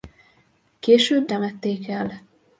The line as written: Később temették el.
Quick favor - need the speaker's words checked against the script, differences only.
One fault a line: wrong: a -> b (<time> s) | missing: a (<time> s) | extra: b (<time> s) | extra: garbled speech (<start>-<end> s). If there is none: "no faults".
no faults